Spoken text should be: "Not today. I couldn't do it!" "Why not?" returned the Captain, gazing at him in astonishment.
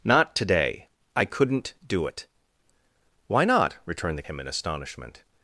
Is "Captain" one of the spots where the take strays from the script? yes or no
yes